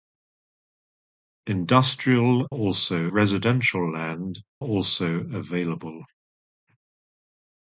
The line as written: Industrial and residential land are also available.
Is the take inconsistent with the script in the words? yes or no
yes